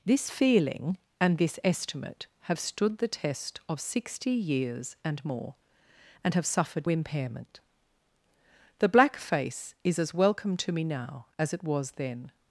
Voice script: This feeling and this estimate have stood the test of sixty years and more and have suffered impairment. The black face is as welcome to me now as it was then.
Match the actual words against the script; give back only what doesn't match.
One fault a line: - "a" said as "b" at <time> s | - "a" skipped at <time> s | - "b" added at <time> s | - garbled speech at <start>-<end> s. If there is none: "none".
none